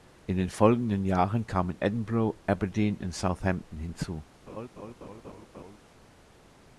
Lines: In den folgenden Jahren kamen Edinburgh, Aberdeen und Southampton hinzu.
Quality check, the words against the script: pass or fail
pass